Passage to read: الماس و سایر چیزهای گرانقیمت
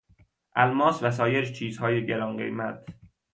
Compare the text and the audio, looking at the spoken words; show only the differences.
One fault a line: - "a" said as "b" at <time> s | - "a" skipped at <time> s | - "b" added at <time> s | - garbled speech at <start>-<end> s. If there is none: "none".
none